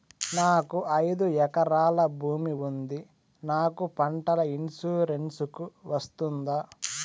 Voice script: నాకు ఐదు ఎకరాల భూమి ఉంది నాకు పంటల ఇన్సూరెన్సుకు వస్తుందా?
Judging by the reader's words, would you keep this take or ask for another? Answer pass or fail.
pass